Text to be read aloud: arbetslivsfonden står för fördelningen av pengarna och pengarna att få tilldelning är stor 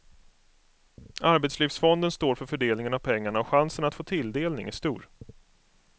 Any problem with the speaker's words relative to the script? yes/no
yes